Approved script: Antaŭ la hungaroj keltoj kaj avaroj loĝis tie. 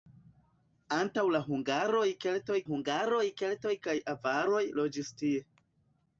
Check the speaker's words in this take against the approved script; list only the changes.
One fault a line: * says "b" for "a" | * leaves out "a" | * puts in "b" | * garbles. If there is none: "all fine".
* puts in "hungaroj keltoj"